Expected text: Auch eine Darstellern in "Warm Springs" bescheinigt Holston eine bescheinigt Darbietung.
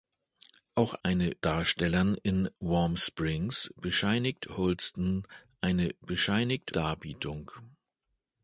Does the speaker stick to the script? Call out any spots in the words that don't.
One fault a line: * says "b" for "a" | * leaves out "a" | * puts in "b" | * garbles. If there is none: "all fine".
all fine